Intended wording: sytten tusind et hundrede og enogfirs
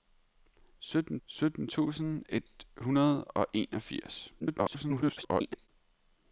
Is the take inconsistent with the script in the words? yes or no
yes